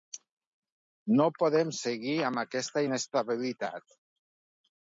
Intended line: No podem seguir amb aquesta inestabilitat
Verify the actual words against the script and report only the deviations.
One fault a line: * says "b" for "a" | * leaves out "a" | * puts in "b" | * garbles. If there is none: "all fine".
all fine